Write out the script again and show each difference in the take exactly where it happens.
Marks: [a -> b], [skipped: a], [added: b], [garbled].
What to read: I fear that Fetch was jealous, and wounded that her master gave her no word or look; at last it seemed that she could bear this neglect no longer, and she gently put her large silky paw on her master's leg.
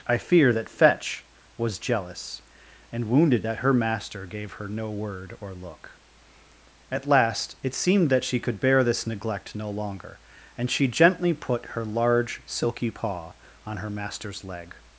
I fear that Fetch was jealous, and wounded that her master gave her no word or look; at last it seemed that she could bear this neglect no longer, and she gently put her large silky paw on her master's leg.